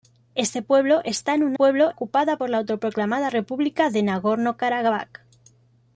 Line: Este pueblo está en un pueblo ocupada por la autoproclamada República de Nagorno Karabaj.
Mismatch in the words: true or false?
false